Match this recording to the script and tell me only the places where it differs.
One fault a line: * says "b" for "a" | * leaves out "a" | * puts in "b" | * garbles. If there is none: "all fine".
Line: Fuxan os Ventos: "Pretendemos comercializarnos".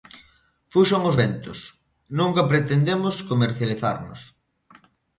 * puts in "Nunca"